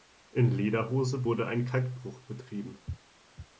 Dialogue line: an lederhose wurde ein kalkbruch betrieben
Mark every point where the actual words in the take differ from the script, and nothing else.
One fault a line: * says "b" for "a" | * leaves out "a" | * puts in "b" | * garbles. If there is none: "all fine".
* says "in" for "an"